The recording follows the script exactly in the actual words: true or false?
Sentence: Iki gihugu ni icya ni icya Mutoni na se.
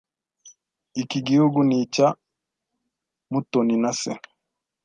false